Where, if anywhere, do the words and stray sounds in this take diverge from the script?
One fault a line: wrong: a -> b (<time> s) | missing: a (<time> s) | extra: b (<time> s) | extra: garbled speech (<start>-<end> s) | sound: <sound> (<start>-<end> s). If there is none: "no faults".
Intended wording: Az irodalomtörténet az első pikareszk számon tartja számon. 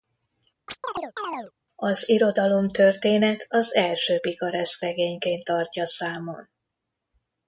sound: chirp (0.7-1.5 s)
wrong: számon -> regényként (4.8 s)